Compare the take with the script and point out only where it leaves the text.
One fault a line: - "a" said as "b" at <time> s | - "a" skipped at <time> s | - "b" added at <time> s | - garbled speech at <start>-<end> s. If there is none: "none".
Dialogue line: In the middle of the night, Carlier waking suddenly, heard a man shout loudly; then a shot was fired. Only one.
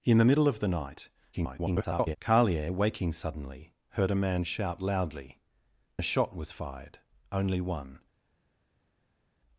- garbled speech at 1.3-2.2 s
- "then" skipped at 5.4 s